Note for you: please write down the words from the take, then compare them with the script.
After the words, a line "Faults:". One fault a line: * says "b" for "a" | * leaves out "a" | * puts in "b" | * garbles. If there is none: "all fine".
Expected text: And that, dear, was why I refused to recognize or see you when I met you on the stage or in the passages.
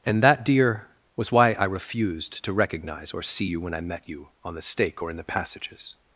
And that, dear, was why I refused to recognize or see you when I met you on the stake or in the passages.
Faults:
* says "stake" for "stage"